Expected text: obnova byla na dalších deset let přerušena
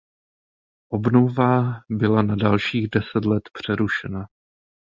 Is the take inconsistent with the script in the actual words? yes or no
no